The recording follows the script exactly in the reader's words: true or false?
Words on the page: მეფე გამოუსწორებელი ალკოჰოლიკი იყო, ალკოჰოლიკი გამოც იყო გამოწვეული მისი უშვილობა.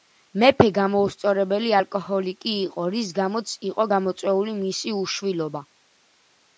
false